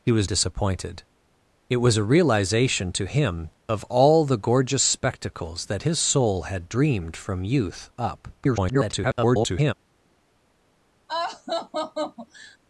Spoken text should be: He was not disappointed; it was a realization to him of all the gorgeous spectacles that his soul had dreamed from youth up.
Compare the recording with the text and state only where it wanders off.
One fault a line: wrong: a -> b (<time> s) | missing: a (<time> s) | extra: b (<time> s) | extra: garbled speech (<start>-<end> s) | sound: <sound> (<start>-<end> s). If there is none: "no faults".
missing: not (0.3 s)
extra: garbled speech (8.4-9.7 s)
sound: laugh (11.1-12.6 s)